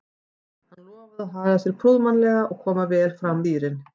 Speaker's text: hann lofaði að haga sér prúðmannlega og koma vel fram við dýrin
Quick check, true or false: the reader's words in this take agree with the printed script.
false